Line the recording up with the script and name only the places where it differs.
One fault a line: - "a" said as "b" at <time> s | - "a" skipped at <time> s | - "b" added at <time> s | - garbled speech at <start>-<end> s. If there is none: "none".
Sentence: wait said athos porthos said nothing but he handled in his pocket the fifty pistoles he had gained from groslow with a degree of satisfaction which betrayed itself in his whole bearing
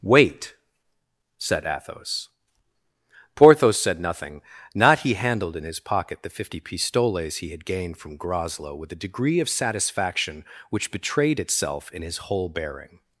- "but" said as "not" at 4.7 s